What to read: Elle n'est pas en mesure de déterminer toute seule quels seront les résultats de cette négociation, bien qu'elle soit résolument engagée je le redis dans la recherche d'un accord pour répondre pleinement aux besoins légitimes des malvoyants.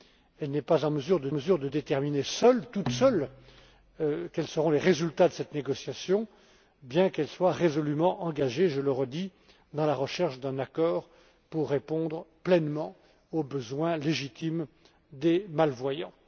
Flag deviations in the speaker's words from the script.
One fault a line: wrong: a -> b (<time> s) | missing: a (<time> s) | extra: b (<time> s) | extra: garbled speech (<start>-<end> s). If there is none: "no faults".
extra: mesure de (1.3 s)